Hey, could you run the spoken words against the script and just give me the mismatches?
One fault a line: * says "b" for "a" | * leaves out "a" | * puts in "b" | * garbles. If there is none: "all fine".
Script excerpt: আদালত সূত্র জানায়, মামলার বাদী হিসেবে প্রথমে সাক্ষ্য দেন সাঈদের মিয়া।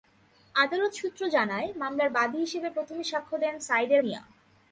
all fine